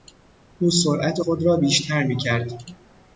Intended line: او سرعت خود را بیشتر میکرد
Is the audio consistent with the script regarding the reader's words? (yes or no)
yes